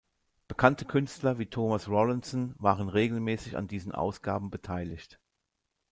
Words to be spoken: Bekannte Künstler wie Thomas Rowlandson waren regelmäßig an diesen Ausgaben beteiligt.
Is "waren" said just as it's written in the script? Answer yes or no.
yes